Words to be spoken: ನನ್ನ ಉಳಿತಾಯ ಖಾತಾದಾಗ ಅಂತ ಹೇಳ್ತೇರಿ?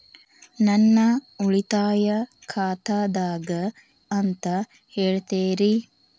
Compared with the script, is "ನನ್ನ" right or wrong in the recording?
right